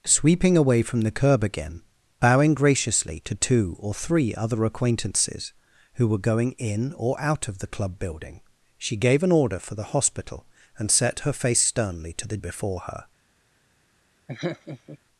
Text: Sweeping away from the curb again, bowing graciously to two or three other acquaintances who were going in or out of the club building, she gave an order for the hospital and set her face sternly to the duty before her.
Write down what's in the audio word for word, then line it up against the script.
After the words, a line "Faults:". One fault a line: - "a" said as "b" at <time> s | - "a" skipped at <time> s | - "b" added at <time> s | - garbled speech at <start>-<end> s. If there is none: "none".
Sweeping away from the curb again, bowing graciously to two or three other acquaintances who were going in or out of the club building, she gave an order for the hospital and set her face sternly to the before her.
Faults:
- "duty" skipped at 12.4 s